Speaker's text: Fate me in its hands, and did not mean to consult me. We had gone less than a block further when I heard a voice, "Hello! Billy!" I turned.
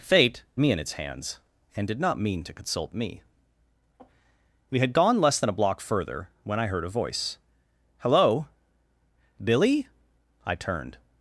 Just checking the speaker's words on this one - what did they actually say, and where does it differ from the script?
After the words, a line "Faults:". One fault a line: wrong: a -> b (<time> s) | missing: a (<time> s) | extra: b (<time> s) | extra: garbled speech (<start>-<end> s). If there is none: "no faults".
Fate me in its hands, and did not mean to consult me. We had gone less than a block further when I heard a voice, "Hello! Billy!" I turned.
Faults:
no faults